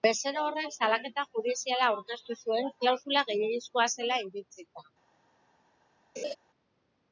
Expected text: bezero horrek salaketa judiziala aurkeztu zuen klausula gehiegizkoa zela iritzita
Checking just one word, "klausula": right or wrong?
right